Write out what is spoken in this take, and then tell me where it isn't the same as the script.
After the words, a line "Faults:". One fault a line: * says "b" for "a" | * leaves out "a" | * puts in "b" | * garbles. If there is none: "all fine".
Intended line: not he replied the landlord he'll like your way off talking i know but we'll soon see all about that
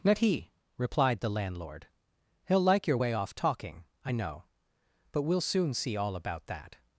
not he replied the landlord he'll like your way off talking i know but we'll soon see all about that
Faults:
all fine